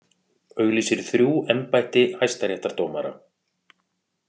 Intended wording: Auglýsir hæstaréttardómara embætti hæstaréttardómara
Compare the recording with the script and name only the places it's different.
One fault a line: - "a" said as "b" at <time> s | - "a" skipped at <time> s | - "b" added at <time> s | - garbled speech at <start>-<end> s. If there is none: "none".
- "hæstaréttardómara" said as "þrjú" at 1.1 s